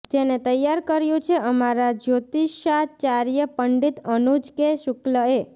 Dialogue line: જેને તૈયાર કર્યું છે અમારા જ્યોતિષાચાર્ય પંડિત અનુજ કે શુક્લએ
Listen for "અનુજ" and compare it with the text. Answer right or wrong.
right